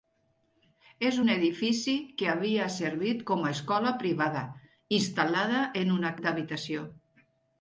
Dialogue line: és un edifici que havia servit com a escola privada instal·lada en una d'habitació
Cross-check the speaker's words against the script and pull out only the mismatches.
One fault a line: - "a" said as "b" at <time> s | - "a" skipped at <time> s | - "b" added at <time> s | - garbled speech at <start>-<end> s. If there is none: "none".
none